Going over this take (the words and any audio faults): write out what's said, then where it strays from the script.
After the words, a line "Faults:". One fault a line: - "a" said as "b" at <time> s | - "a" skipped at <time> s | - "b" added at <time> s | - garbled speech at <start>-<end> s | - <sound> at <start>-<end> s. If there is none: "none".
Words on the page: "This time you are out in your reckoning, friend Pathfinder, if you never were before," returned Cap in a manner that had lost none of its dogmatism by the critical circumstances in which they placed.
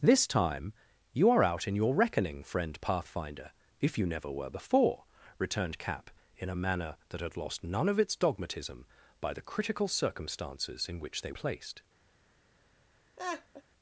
"This time you are out in your reckoning, friend Pathfinder, if you never were before," returned Cap in a manner that had lost none of its dogmatism by the critical circumstances in which they placed.
Faults:
- laugh at 13.2-13.6 s